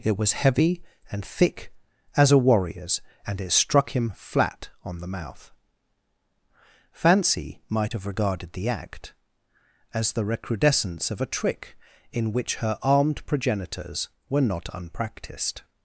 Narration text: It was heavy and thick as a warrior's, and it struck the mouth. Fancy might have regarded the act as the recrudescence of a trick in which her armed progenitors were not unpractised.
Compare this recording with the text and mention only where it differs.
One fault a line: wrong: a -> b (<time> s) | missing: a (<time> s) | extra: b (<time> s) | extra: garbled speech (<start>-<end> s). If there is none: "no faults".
extra: him flat on (3.9 s)